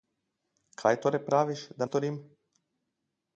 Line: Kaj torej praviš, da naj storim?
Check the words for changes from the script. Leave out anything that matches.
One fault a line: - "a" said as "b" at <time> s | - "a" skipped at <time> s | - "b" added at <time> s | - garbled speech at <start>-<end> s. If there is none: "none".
- "naj" skipped at 1.9 s